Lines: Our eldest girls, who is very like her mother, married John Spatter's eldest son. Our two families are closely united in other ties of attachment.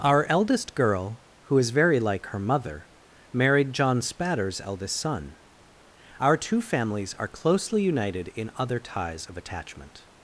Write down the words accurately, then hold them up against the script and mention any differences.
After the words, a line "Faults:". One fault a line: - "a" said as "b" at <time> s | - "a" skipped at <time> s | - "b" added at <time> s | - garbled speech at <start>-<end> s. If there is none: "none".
Our eldest girl, who is very like her mother, married John Spatter's eldest son. Our two families are closely united in other ties of attachment.
Faults:
- "girls" said as "girl" at 0.7 s